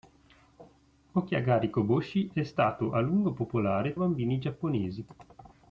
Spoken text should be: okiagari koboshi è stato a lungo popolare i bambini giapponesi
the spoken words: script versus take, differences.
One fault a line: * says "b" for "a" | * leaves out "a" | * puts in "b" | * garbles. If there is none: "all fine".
all fine